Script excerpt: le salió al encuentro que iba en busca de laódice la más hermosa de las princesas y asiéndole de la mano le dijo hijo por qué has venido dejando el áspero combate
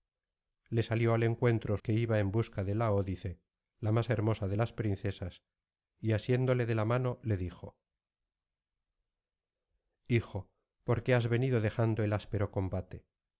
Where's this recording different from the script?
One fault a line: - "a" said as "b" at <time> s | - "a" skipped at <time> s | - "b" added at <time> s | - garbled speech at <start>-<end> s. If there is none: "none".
none